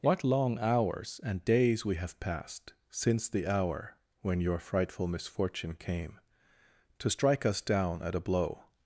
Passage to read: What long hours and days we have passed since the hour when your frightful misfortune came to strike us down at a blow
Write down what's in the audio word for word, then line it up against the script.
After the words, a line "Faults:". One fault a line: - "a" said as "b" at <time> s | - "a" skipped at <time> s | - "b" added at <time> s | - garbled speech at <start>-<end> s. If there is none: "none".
What long hours and days we have passed since the hour when your frightful misfortune came to strike us down at a blow
Faults:
none